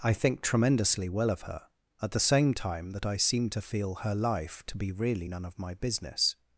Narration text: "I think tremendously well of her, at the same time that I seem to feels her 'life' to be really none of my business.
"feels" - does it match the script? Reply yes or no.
no